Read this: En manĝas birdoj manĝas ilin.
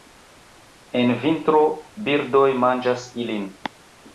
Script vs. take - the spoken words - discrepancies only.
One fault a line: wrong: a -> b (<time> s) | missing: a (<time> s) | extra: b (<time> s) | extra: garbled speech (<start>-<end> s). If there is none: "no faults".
wrong: manĝas -> vintro (1.2 s)